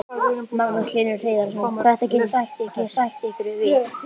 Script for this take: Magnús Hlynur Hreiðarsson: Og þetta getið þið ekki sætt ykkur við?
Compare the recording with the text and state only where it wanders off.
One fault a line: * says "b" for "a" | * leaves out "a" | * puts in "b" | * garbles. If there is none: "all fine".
* leaves out "Og"
* says "sætt" for "þið"